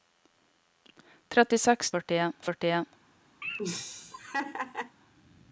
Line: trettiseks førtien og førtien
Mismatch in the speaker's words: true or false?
false